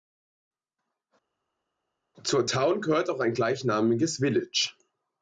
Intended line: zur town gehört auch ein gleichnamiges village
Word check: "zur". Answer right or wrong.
right